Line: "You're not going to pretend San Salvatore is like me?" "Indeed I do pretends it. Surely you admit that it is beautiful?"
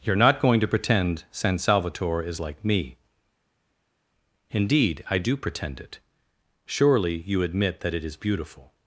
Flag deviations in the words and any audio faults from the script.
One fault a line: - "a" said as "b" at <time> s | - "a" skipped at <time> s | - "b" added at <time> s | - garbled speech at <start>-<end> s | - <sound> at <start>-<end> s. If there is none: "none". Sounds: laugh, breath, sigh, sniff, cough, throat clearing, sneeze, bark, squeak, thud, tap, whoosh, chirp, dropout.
- "pretends" said as "pretend" at 5.4 s